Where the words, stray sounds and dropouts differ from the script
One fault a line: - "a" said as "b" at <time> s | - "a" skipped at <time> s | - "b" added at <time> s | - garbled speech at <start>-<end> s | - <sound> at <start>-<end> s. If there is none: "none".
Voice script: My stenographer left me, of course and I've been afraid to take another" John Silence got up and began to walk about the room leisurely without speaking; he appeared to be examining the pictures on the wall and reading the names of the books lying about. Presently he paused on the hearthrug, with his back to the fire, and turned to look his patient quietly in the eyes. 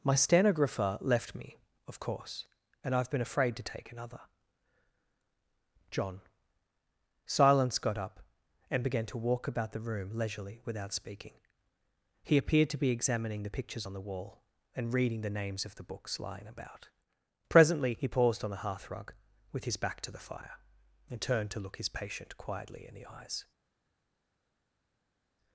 none